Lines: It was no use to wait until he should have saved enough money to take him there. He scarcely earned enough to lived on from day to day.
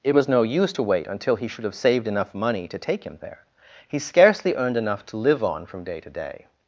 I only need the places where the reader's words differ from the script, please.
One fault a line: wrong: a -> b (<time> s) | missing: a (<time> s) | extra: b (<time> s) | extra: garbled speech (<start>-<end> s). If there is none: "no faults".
wrong: lived -> live (5.2 s)